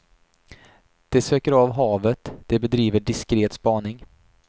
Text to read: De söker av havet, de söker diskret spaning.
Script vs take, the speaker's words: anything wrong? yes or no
yes